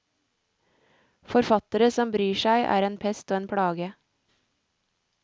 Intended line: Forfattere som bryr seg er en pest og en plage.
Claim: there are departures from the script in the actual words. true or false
false